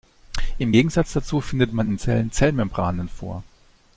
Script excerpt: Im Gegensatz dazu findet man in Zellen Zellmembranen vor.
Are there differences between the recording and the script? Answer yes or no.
no